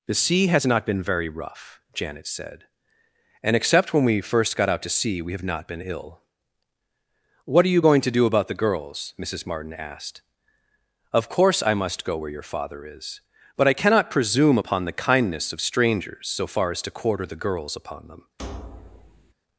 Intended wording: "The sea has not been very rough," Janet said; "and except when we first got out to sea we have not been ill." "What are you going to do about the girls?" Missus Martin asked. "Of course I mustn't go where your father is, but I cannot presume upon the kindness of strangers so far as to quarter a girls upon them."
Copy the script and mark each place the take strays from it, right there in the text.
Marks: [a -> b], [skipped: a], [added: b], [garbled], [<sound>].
"The sea has not been very rough," Janet said; "and except when we first got out to sea we have not been ill." "What are you going to do about the girls?" Missus Martin asked. "Of course I [mustn't -> must] go where your father is, but I cannot presume upon the kindness of strangers so far as to quarter [a -> the] girls upon them." [thud]